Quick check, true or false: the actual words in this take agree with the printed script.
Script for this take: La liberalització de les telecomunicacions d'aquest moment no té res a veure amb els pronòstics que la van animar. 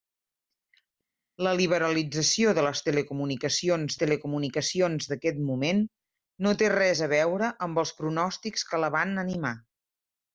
false